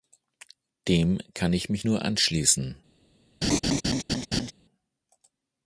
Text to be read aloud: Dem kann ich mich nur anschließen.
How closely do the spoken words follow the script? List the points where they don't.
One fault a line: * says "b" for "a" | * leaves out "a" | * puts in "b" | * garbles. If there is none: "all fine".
all fine